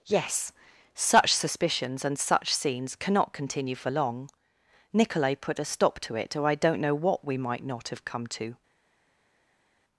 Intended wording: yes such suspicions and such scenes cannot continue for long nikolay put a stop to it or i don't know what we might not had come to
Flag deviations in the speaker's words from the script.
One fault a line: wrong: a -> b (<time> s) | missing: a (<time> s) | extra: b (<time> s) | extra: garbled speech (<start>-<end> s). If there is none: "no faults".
wrong: had -> have (7.9 s)